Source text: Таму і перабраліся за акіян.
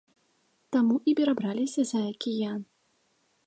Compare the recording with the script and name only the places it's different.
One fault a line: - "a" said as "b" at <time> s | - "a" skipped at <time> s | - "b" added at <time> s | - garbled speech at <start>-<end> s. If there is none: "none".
none